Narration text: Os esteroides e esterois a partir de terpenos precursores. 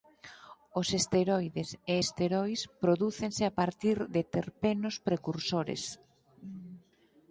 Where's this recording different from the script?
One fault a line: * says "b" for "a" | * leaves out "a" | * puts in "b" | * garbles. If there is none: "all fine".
* puts in "prodúcense"